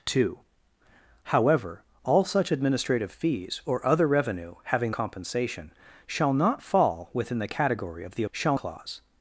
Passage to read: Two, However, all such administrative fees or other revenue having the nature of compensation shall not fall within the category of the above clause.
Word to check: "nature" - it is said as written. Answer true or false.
false